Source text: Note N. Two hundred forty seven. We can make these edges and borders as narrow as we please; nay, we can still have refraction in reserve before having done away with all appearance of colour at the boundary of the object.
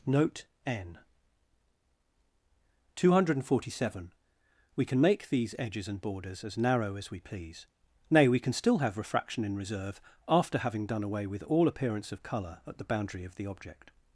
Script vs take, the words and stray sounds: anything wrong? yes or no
yes